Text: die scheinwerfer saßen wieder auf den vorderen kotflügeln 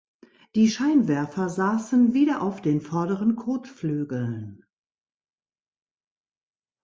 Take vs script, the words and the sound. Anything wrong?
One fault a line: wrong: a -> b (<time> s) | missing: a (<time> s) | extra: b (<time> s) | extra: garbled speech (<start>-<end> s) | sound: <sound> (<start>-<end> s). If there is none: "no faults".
no faults